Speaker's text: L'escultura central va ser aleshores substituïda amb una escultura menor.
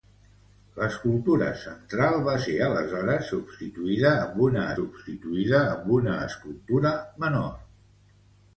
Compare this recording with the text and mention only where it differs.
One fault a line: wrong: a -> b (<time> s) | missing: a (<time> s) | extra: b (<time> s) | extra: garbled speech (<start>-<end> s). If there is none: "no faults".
extra: substituïda amb una (4.8 s)